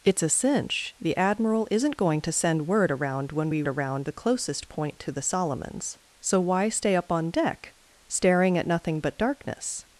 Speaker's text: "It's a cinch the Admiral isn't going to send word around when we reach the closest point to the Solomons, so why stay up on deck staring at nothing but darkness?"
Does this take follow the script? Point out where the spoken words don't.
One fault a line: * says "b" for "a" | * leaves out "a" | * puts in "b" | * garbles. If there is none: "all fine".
* says "around" for "reach"